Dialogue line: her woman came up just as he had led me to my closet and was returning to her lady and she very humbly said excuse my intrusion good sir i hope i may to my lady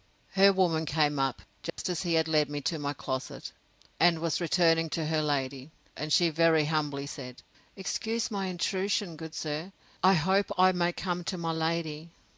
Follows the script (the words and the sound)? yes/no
no